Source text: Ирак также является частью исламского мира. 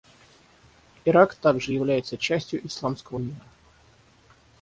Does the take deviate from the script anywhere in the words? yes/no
no